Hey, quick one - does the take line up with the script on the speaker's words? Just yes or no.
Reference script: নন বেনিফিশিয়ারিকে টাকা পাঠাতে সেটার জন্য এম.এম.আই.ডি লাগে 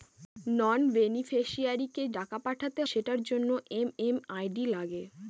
yes